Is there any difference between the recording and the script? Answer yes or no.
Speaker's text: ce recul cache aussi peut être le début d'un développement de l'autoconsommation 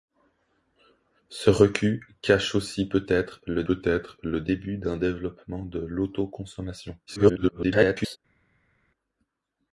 yes